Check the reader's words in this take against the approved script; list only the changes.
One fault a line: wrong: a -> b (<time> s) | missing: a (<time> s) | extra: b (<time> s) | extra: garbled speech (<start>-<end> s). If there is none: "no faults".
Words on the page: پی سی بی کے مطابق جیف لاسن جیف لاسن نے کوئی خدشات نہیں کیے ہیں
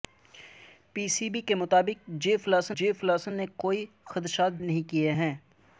no faults